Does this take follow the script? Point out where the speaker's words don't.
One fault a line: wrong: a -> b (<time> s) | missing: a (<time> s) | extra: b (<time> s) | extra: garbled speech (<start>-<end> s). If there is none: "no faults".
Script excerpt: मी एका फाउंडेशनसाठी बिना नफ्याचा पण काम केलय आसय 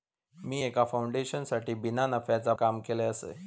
missing: पण (2.5 s)